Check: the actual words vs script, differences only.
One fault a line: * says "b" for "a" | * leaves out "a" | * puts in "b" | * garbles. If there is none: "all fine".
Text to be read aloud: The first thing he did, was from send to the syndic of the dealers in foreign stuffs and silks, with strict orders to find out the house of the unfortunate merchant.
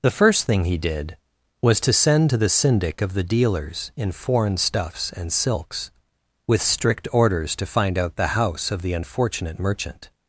* says "to" for "from"